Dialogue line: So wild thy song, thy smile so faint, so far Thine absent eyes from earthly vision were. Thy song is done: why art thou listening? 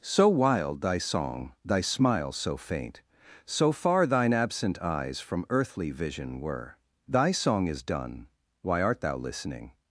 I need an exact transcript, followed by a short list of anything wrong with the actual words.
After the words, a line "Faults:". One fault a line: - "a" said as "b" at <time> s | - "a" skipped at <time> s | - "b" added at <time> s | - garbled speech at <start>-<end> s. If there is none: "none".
So wild thy song, thy smile so faint, so far Thine absent eyes from earthly vision were. Thy song is done: why art thou listening?
Faults:
none